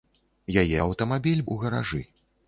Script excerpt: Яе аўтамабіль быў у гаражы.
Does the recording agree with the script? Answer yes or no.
no